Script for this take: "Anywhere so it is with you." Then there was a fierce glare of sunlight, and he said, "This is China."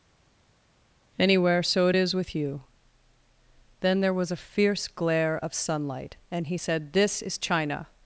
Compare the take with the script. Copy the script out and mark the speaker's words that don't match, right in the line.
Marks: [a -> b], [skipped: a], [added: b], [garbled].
"Anywhere so it is with you." Then there was a fierce glare of sunlight, and he said, "This is China."